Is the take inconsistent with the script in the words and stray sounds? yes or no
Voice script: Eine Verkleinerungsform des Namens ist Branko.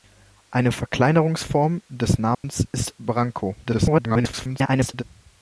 yes